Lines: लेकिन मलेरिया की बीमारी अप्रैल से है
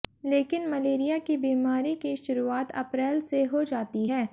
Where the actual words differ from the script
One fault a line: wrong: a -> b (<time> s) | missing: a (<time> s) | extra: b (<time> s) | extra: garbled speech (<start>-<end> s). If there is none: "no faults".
extra: की शुरुआत (2.0 s)
extra: हो जाती (3.5 s)